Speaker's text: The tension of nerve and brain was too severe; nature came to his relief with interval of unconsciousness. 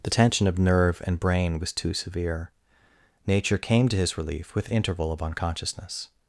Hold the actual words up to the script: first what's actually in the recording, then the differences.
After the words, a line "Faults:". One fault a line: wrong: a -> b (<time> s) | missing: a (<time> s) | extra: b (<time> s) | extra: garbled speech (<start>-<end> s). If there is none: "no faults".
The tension of nerve and brain was too severe; nature came to his relief with interval of unconsciousness.
Faults:
no faults